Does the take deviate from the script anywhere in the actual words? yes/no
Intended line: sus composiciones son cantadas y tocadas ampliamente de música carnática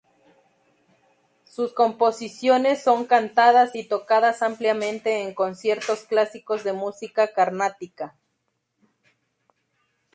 yes